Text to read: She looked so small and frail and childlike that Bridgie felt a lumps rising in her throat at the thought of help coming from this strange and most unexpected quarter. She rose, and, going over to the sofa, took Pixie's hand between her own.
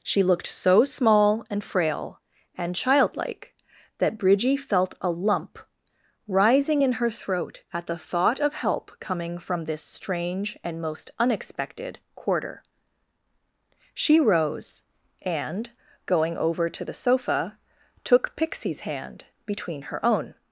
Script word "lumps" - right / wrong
wrong